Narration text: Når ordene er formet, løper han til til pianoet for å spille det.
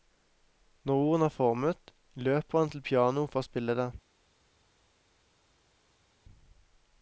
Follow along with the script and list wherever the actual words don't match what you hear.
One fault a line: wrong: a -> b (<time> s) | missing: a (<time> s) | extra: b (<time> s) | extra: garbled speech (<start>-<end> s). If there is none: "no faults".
missing: til (2.8 s)